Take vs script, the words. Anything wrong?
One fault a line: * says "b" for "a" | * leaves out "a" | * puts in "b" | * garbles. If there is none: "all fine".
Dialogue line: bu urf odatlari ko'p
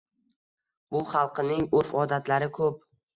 * puts in "xalqining"